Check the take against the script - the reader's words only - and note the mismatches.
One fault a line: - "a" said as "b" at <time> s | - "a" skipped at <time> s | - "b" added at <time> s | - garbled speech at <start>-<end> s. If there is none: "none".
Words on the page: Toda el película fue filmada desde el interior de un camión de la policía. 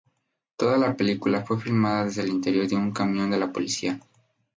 - "el" said as "la" at 0.8 s